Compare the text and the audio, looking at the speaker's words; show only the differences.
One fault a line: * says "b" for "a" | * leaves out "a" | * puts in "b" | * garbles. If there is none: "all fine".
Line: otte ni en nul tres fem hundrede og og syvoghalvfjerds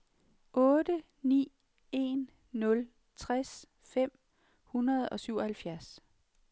* leaves out "og"